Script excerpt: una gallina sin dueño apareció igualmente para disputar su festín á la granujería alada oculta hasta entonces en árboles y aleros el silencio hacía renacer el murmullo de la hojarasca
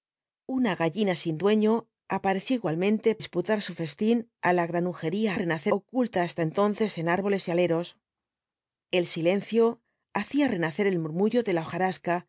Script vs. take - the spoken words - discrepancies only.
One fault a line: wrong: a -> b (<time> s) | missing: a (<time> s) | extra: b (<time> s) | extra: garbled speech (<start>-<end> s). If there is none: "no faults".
missing: para (3.1 s)
wrong: alada -> renacer (5.4 s)